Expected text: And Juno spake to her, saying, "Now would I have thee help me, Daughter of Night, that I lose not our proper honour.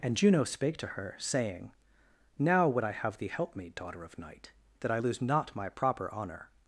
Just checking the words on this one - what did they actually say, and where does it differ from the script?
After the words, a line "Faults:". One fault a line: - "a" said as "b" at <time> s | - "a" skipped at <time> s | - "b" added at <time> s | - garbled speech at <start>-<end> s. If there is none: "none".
And Juno spake to her, saying, "Now would I have thee help me, Daughter of Night, that I lose not my proper honour.
Faults:
- "our" said as "my" at 5.5 s